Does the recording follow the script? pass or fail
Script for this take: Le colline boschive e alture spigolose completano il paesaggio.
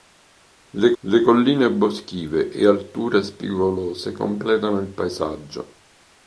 fail